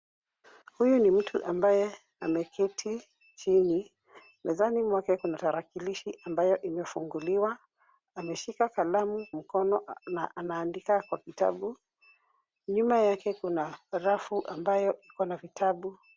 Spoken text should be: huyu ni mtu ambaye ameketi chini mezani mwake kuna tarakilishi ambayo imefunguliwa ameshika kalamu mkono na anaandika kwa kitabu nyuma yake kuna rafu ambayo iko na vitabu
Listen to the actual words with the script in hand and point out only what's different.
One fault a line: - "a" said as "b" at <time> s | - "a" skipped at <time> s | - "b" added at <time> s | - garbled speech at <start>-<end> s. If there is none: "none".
none